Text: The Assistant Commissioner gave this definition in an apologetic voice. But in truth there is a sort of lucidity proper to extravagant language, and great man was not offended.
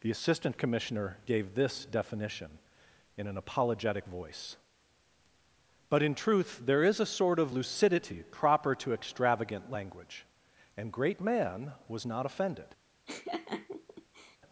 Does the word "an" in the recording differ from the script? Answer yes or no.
no